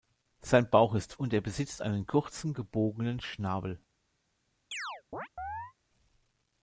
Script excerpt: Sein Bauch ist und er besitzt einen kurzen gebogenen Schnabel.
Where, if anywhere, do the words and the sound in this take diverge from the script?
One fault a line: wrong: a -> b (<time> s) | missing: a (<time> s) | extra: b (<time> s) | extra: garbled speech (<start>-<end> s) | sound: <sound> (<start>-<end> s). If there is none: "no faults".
sound: chirp (4.7-5.7 s)